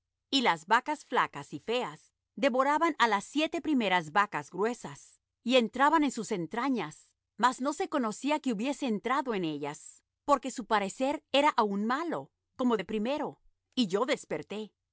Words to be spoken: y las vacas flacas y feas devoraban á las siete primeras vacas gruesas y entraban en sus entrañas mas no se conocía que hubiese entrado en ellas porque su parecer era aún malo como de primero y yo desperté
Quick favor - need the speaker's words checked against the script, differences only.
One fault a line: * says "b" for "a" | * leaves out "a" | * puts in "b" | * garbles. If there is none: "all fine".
all fine